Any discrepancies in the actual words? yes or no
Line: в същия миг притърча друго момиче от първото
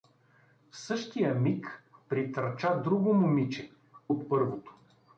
no